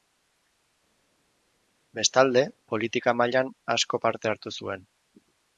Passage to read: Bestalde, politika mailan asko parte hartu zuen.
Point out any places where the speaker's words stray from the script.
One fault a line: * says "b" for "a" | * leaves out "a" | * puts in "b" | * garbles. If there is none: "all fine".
all fine